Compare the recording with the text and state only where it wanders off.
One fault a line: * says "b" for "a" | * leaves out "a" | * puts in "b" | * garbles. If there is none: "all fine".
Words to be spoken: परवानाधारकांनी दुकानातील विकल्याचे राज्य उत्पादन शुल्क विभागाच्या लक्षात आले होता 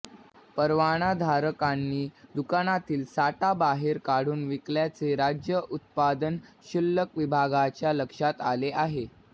* puts in "साठा बाहेर काढून"
* says "आहे" for "होता"